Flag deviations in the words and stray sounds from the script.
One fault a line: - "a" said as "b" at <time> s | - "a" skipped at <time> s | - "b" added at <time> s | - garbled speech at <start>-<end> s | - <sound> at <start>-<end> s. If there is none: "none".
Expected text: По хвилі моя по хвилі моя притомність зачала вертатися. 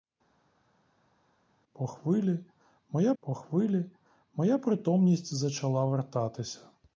none